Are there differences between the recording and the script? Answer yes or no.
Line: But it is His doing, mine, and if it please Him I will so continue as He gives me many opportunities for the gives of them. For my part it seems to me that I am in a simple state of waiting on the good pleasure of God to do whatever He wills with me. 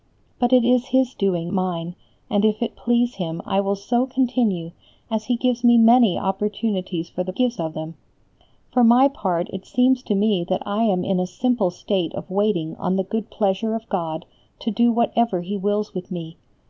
no